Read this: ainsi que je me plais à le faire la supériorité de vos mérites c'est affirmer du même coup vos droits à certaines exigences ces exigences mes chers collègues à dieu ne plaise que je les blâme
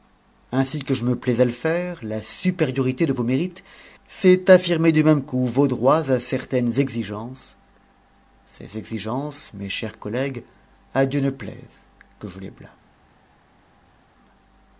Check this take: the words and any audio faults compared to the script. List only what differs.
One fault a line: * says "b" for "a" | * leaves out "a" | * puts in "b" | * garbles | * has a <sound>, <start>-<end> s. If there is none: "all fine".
all fine